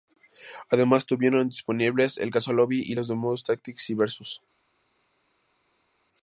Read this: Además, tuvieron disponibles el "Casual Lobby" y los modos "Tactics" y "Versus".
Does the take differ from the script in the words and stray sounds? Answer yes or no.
no